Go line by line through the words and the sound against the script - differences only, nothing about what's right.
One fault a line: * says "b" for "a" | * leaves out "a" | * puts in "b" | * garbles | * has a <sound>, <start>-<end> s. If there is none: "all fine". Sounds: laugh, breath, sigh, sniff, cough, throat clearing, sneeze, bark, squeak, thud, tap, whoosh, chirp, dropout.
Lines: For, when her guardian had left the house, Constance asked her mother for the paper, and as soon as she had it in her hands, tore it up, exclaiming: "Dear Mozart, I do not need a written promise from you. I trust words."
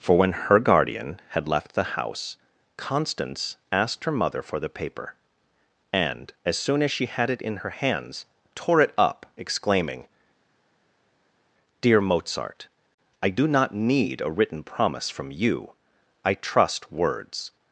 all fine